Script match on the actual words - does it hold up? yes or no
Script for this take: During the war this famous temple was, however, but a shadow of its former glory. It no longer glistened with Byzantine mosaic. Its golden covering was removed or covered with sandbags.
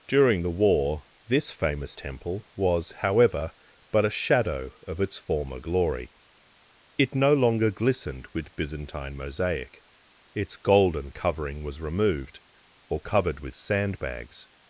yes